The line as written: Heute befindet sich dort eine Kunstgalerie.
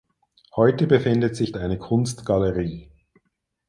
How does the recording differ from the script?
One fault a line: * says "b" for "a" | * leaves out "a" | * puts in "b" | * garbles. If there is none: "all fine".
* leaves out "dort"